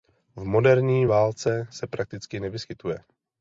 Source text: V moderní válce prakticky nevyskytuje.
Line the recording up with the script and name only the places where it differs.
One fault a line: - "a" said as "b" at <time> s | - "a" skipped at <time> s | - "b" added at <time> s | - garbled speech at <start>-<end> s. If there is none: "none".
- "se" added at 1.7 s